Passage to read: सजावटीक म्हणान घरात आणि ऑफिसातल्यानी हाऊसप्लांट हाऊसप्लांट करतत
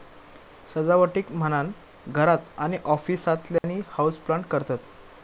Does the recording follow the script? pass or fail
fail